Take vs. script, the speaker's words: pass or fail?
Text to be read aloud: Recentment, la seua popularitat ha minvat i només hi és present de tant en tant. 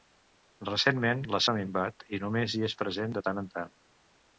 fail